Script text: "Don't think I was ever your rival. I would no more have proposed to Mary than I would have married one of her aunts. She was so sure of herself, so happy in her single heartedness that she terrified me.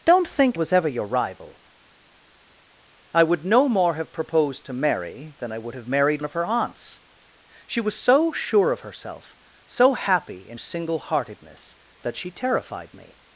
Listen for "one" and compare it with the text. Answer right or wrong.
wrong